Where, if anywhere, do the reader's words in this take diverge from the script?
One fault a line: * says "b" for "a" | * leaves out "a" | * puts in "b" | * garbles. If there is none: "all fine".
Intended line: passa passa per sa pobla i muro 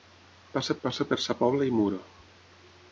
all fine